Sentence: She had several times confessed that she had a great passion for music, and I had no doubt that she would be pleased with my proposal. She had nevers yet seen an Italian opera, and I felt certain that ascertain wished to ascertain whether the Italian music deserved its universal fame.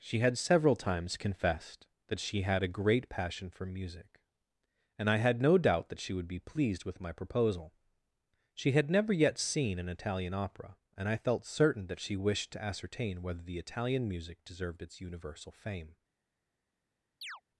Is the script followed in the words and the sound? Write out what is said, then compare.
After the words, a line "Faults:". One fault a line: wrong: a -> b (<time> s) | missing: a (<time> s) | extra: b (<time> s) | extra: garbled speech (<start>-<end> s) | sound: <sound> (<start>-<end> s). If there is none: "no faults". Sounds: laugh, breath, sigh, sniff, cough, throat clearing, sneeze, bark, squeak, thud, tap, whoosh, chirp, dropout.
She had several times confessed that she had a great passion for music, and I had no doubt that she would be pleased with my proposal. She had never yet seen an Italian opera, and I felt certain that she wished to ascertain whether the Italian music deserved its universal fame.
Faults:
wrong: nevers -> never (8.9 s)
wrong: ascertain -> she (12.0 s)
sound: chirp (17.2-17.4 s)